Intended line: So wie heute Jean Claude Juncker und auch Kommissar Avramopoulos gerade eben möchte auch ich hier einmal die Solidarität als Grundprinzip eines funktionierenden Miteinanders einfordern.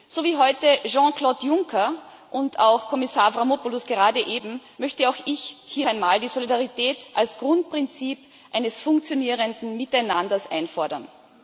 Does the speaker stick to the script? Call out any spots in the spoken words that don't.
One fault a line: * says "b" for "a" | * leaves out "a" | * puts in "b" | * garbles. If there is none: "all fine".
all fine